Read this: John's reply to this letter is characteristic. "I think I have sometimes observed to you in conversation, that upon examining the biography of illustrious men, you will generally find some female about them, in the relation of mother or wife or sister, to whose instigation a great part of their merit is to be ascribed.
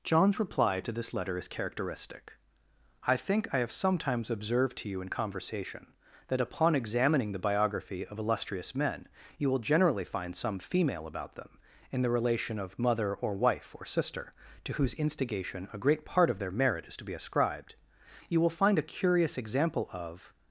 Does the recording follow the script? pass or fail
fail